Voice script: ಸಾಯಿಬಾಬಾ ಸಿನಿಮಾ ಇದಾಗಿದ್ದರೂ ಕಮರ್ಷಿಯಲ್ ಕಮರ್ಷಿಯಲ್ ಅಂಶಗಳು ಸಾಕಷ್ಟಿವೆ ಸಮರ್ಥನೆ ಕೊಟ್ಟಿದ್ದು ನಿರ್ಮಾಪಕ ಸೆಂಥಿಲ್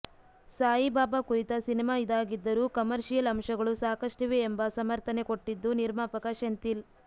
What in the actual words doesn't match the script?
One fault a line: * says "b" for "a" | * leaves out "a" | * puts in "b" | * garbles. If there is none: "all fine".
* puts in "ಕುರಿತ"
* leaves out "ಕಮರ್ಷಿಯಲ್"
* puts in "ಎಂಬ"